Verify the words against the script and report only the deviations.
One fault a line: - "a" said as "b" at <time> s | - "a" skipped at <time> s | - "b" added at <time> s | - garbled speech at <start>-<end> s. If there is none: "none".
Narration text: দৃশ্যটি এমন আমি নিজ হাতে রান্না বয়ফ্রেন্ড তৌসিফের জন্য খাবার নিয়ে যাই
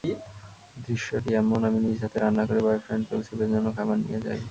- "করে" added at 2.5 s